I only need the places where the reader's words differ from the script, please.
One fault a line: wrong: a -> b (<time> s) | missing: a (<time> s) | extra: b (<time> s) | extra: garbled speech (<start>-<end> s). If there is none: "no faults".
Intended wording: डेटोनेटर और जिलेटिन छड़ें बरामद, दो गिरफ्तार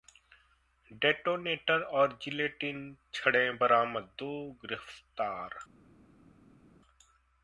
no faults